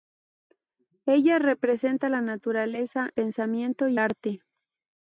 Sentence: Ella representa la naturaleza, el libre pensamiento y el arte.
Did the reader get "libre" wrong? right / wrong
wrong